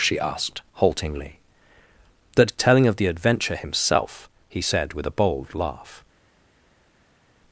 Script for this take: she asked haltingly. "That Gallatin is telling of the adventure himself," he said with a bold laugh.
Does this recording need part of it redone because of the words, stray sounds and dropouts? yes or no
yes